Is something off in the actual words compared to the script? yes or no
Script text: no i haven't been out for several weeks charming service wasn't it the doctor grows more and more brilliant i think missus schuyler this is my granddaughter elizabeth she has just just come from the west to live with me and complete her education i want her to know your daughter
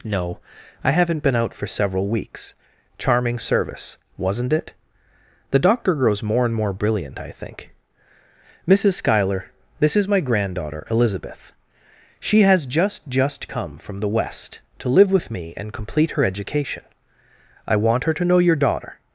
no